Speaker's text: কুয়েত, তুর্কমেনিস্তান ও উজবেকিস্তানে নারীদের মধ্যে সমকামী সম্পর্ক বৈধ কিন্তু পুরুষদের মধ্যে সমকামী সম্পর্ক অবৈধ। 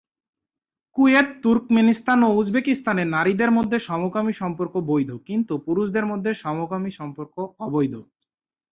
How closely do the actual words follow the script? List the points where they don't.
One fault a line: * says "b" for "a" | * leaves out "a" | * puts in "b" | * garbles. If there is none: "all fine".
all fine